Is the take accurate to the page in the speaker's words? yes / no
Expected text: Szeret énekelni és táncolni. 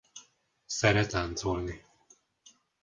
no